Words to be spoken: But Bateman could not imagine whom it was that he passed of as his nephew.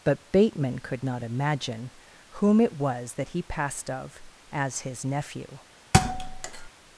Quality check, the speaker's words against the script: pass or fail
pass